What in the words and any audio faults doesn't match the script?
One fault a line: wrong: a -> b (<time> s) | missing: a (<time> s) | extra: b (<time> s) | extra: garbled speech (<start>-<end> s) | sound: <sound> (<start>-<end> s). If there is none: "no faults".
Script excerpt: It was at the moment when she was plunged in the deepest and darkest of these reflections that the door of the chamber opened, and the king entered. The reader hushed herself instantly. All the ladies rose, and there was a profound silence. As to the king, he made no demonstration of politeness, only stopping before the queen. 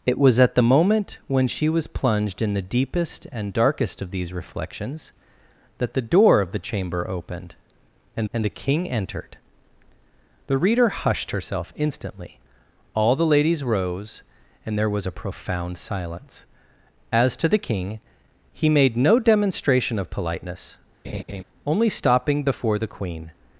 extra: and (8.3 s)
sound: laugh (21.0-21.4 s)